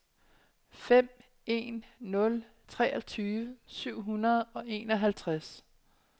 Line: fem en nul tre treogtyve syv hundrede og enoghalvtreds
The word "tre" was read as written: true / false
false